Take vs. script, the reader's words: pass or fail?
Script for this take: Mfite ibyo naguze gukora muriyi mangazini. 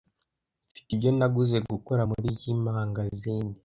pass